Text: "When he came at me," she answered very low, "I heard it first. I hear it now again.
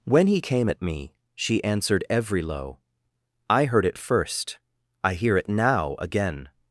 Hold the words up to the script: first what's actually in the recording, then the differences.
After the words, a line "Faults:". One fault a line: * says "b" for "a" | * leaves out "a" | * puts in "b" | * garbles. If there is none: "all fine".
"When he came at me," she answered every low, "I heard it first. I hear it now again.
Faults:
* says "every" for "very"